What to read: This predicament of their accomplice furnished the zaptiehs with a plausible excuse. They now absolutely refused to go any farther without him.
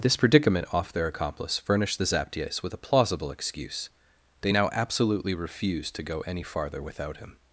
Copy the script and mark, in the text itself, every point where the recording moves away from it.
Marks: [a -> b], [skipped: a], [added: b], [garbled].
This predicament [of -> off] their accomplice furnished the zaptiehs with a plausible excuse. They now absolutely refused to go any farther without him.